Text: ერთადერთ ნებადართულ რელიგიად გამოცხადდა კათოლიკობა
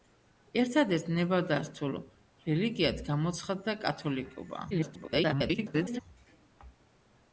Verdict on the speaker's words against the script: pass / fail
fail